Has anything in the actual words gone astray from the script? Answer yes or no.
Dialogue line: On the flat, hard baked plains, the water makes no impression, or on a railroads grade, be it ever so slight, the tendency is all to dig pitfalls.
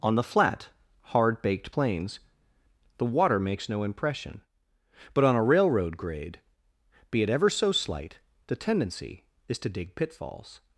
yes